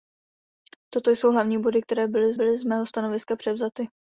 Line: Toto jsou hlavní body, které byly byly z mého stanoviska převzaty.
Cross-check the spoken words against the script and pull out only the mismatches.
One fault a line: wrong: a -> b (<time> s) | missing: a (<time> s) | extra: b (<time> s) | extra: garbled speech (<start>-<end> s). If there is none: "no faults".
no faults